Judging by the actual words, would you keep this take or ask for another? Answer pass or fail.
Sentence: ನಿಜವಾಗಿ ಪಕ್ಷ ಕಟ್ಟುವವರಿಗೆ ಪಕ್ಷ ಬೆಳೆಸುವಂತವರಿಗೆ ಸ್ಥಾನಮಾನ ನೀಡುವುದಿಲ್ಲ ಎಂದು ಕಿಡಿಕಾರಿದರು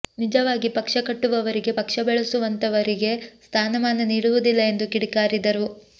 pass